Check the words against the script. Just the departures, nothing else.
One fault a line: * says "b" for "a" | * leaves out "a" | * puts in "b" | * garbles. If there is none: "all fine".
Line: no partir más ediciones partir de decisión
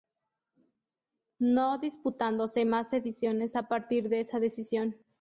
* says "disputándose" for "partir"
* puts in "a"
* puts in "esa"